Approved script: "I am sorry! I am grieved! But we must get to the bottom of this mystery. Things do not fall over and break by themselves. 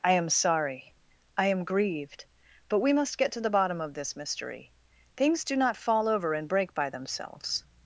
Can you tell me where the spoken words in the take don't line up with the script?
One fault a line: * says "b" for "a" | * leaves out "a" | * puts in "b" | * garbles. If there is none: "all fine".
all fine